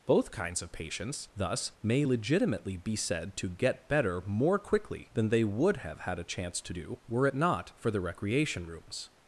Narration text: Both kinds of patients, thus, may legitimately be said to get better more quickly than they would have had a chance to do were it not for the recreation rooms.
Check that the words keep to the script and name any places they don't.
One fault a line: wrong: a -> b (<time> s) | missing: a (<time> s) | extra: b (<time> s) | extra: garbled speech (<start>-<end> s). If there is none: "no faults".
no faults